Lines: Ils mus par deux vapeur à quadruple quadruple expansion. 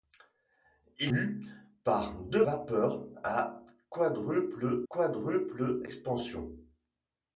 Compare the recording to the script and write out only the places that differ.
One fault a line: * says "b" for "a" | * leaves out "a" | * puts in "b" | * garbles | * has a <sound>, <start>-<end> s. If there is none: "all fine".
all fine